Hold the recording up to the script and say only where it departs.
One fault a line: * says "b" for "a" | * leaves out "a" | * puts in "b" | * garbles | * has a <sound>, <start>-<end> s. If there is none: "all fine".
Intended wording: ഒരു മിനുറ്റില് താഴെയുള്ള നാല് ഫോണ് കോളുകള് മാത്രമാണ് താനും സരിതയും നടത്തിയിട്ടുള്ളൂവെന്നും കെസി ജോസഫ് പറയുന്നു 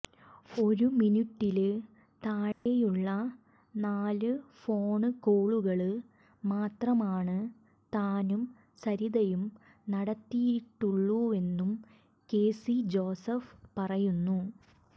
* has a dropout, 2.5-2.7 s